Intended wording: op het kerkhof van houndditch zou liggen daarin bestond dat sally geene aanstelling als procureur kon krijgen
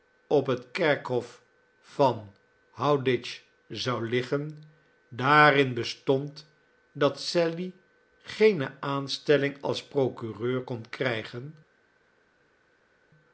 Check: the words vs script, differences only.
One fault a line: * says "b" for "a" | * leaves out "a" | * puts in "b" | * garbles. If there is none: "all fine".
all fine